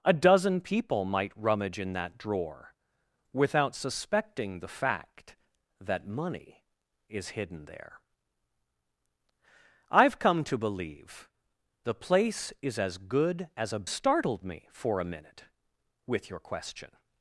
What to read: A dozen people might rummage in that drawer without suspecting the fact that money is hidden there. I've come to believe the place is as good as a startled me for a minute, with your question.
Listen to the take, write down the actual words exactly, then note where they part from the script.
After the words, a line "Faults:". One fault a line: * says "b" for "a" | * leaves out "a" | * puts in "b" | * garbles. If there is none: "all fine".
A dozen people might rummage in that drawer without suspecting the fact that money is hidden there. I've come to believe the place is as good as a startled me for a minute, with your question.
Faults:
all fine